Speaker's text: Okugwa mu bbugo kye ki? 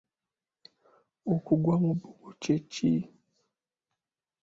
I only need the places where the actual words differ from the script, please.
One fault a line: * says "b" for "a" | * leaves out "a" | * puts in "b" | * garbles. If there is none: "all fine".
all fine